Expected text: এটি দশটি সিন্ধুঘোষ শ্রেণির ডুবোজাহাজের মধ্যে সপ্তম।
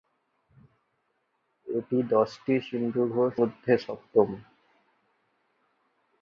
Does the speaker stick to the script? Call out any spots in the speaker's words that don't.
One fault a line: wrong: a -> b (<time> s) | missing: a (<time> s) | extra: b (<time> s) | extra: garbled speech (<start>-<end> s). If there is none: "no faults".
missing: শ্রেণির ডুবোজাহাজের (3.3 s)